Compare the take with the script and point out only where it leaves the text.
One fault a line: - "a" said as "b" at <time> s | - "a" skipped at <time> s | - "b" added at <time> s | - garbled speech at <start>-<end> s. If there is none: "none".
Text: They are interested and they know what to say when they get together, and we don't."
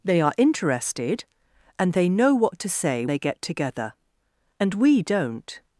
- "when" skipped at 3.0 s